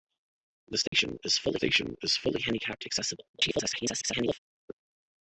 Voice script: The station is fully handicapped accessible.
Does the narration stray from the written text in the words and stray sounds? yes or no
yes